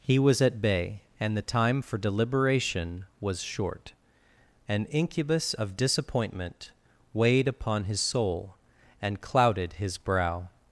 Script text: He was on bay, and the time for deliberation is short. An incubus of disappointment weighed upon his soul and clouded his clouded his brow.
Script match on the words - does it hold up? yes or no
no